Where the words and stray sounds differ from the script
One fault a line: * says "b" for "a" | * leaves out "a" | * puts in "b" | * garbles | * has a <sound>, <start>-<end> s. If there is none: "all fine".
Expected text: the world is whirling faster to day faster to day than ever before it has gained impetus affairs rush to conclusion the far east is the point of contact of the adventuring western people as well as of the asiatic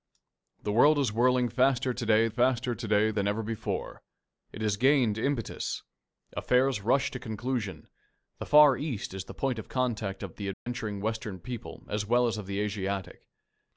* has a dropout, 10.5-10.7 s